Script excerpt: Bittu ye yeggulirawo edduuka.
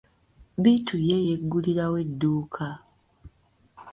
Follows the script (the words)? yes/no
yes